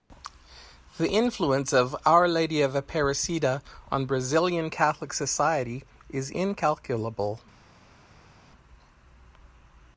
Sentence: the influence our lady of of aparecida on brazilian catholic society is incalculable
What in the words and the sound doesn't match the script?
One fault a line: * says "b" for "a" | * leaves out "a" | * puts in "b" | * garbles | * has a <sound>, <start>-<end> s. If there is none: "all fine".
* puts in "of"
* leaves out "of"